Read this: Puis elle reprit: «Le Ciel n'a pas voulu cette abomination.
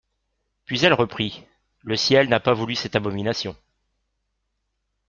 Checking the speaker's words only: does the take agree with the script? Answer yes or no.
yes